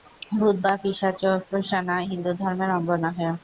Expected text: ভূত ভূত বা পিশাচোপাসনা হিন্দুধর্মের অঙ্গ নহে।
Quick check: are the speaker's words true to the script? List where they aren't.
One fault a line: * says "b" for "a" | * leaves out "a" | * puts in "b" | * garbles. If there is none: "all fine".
* leaves out "ভূত"